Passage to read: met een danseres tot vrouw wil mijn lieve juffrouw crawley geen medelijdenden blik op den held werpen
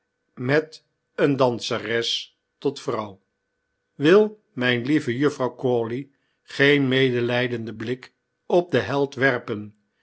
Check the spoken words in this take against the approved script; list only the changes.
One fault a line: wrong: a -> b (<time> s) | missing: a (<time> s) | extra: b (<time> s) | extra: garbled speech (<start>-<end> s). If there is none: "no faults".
no faults